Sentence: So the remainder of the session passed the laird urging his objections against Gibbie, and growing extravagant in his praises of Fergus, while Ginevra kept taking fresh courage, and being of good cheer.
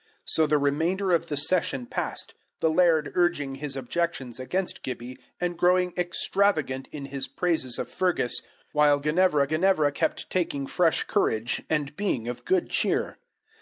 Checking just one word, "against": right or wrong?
right